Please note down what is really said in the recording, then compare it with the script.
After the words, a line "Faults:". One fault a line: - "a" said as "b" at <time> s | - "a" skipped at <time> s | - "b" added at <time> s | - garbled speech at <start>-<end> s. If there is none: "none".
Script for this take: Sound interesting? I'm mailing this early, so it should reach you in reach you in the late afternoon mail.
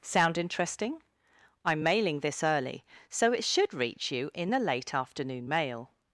Sound interesting? I'm mailing this early, so it should reach you in the late afternoon mail.
Faults:
- "reach you in" skipped at 4.5 s